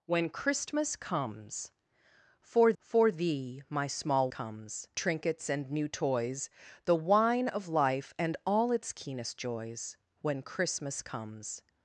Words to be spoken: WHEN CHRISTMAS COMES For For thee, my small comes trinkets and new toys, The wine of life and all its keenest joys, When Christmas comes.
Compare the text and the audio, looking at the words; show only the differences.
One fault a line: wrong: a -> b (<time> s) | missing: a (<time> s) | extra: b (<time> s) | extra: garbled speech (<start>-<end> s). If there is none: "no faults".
no faults